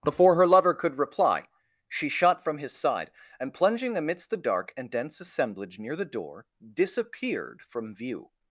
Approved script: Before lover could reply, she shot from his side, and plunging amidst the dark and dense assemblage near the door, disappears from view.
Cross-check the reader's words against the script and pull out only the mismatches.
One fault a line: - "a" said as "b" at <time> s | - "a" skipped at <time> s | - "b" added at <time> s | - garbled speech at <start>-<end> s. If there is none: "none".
- "her" added at 0.3 s
- "disappears" said as "disappeared" at 6.7 s